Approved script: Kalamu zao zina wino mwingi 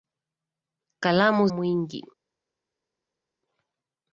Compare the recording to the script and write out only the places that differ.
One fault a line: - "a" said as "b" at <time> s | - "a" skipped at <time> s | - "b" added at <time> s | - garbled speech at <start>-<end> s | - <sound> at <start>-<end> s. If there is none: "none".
- "zao zina wino" skipped at 1.5 s